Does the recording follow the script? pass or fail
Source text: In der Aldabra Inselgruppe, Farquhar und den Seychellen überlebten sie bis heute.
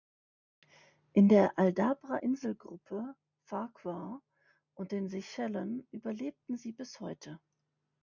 pass